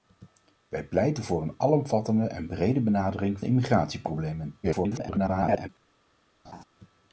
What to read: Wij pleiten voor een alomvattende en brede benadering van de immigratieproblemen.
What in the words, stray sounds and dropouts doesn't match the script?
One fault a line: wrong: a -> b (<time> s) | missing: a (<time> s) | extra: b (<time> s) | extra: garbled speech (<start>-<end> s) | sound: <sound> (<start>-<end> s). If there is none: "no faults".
missing: van (3.4 s)
extra: garbled speech (4.6-5.7 s)
sound: laugh (6.4-6.6 s)